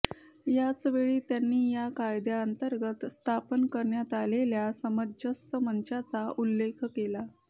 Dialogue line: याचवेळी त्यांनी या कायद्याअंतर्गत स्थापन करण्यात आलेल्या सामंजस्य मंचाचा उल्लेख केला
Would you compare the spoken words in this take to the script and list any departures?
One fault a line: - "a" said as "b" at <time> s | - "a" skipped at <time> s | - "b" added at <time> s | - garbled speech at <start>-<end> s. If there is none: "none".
none